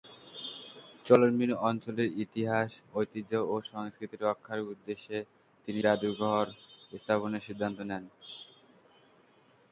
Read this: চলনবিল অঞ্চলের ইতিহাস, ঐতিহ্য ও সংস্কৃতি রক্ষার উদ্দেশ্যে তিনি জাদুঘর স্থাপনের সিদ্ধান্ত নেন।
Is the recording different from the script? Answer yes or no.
no